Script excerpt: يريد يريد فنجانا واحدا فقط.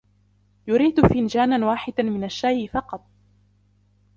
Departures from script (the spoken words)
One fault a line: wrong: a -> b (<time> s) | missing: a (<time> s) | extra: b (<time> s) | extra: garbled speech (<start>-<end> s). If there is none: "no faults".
missing: يريد (1.1 s)
extra: من الشاي (2.0 s)